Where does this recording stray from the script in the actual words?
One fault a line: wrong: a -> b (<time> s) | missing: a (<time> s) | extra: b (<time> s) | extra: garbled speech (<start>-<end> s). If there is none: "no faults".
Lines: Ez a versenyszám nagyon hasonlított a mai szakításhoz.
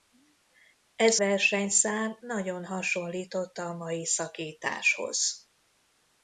missing: a (1.2 s)